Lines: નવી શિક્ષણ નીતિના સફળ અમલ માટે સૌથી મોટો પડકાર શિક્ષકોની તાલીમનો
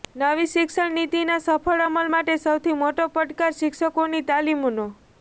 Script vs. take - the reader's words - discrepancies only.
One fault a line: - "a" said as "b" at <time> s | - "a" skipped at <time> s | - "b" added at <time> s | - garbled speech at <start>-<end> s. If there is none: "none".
none